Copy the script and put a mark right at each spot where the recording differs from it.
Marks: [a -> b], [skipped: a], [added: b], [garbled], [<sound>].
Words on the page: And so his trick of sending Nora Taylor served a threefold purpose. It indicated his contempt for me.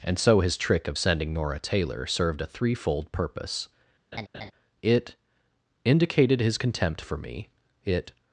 And so his trick of sending Nora Taylor served a threefold purpose. [laugh] It indicated his contempt for me. [added: It]